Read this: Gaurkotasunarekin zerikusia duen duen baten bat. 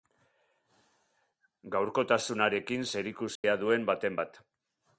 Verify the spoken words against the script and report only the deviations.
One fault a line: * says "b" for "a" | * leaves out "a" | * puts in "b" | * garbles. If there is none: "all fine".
* leaves out "duen"